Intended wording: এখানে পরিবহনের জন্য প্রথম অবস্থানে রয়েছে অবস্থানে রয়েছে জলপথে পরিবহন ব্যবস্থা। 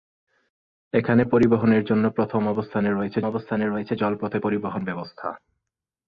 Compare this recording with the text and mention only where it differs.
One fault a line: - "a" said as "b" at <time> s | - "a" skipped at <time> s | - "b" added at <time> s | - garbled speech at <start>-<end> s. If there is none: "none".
none